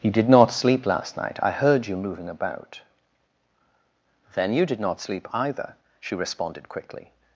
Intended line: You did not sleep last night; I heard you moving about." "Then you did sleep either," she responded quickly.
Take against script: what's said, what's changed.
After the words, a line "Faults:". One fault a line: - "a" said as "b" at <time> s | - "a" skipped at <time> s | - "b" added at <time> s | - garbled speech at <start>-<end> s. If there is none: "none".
You did not sleep last night; I heard you moving about." "Then you did not sleep either," she responded quickly.
Faults:
- "not" added at 4.8 s